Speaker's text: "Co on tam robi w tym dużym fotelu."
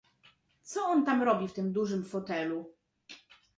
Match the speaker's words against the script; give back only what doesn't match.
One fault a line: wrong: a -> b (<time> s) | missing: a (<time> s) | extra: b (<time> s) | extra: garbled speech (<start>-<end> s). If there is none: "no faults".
no faults